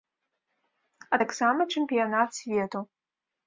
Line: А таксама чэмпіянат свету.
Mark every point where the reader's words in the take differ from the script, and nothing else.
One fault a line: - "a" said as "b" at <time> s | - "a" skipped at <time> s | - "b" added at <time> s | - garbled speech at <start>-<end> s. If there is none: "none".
none